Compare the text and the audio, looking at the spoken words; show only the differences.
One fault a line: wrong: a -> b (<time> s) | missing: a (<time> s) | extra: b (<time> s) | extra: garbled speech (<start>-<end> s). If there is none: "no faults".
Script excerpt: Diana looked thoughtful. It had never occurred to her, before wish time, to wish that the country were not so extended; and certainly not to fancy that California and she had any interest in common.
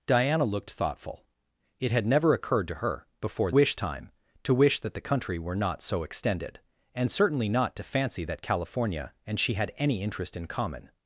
no faults